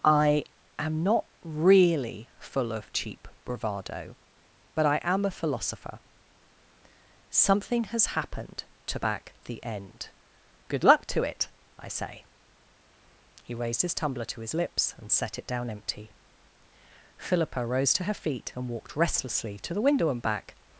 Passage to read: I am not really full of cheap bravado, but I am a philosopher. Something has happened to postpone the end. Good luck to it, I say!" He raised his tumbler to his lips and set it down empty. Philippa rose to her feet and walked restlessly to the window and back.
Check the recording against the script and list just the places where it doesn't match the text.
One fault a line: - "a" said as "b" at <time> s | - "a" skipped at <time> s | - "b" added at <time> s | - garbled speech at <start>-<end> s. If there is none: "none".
- "postpone" said as "back" at 9.0 s